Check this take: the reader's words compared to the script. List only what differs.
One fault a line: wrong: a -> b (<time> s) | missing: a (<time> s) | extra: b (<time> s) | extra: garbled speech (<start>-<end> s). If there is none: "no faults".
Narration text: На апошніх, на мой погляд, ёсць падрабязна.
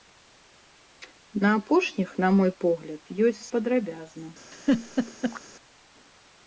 no faults